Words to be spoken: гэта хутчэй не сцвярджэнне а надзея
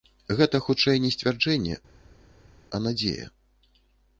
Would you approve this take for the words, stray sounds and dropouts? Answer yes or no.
yes